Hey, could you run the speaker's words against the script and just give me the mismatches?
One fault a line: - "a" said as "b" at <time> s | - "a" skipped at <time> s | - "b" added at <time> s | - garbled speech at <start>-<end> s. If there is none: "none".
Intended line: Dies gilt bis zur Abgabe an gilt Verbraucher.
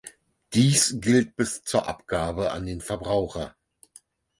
- "gilt" said as "den" at 2.7 s